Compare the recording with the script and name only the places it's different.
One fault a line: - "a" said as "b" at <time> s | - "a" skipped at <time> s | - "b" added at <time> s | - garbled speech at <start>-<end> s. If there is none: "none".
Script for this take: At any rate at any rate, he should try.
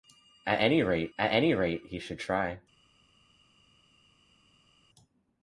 none